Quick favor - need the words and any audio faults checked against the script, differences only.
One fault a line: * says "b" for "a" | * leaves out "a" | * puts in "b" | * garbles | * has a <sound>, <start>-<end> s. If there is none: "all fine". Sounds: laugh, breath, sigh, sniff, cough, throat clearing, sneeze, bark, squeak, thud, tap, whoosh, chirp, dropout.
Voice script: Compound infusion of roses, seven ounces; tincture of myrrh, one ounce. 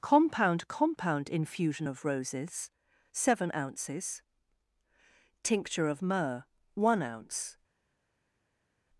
* puts in "compound"